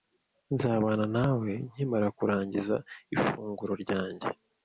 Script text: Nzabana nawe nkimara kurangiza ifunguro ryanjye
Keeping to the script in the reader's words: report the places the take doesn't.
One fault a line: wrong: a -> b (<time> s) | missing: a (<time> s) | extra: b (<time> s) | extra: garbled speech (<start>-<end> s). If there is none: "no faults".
no faults